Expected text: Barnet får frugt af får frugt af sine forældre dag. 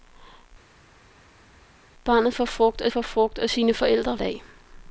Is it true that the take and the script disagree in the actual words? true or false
false